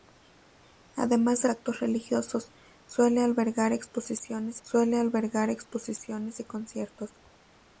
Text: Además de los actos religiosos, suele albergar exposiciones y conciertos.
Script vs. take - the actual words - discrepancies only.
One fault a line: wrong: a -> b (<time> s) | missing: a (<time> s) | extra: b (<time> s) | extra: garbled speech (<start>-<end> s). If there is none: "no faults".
missing: los (1.5 s)
extra: suele albergar exposiciones (4.6 s)